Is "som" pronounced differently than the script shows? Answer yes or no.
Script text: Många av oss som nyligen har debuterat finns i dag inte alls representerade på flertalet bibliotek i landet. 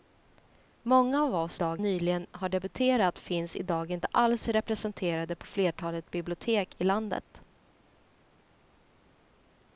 yes